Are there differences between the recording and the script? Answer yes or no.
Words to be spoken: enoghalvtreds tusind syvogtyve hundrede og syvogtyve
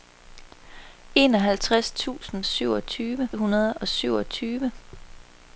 no